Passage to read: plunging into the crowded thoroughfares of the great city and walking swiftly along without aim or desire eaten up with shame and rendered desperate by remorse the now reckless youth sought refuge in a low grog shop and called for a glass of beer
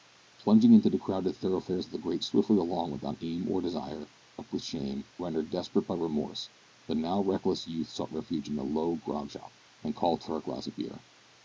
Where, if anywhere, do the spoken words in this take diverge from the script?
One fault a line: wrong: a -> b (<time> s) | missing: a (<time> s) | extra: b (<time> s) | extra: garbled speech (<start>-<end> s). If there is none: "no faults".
missing: city and walking (2.2 s)
missing: eaten (4.1 s)
missing: and (5.1 s)